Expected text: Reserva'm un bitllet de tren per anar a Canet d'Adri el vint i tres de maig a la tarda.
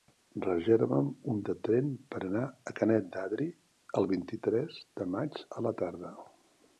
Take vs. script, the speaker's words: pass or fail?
fail